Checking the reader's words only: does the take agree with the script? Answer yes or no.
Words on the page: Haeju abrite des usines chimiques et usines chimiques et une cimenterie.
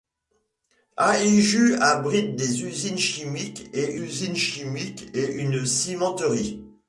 yes